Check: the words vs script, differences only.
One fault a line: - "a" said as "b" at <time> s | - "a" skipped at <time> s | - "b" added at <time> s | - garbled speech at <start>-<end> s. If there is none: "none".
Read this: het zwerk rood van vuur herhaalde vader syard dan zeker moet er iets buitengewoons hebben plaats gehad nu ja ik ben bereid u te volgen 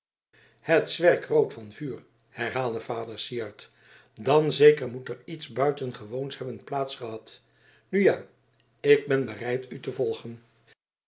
none